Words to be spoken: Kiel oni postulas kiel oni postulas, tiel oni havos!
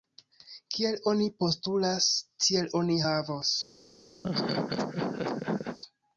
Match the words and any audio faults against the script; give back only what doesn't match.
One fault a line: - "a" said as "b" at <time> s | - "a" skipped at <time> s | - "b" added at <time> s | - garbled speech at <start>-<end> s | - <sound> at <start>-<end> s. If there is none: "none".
- "kiel oni postulas" skipped at 2.1 s
- laugh at 4.2-5.8 s